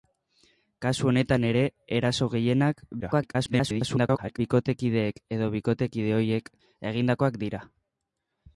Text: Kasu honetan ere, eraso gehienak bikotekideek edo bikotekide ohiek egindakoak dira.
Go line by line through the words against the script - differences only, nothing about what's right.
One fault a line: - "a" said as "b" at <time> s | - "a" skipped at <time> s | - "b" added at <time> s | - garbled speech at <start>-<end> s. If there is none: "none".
- garbled speech at 3.0-4.4 s